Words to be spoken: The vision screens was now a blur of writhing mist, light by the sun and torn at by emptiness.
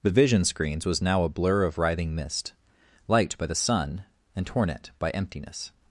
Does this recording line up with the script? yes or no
yes